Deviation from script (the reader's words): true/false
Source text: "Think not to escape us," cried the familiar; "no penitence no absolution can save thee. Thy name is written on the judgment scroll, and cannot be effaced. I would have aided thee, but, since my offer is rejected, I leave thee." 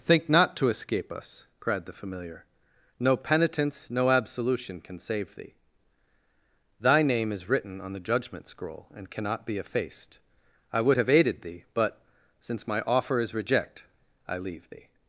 true